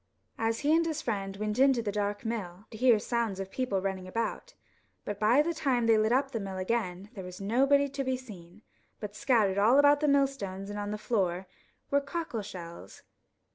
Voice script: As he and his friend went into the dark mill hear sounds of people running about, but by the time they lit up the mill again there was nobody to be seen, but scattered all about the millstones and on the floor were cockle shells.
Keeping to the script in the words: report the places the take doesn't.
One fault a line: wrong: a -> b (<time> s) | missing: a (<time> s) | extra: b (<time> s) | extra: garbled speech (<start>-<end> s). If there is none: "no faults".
no faults